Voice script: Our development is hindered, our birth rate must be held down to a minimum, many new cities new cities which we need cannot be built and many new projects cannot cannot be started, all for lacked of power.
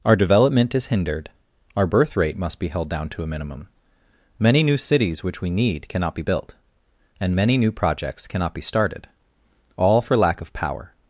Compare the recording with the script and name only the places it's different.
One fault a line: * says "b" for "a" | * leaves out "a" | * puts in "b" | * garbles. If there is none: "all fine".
* leaves out "new cities"
* leaves out "cannot"
* says "lack" for "lacked"